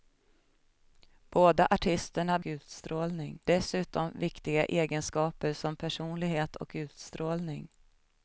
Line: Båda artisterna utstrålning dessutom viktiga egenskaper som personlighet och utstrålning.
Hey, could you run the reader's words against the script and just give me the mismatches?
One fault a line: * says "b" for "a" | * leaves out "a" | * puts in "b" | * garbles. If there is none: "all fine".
all fine